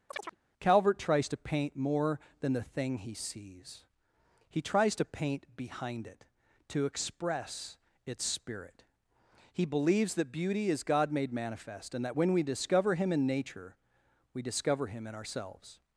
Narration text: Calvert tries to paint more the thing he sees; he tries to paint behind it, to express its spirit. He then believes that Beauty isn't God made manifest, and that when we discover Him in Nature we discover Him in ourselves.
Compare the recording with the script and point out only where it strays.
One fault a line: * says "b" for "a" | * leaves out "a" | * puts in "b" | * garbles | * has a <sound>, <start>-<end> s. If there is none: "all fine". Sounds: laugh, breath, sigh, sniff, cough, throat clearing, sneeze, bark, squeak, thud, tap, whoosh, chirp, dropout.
* has a chirp, 0.1-0.4 s
* puts in "than"
* leaves out "then"
* says "is" for "isn't"